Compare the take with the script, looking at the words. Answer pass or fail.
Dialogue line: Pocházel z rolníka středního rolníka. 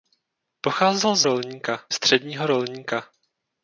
pass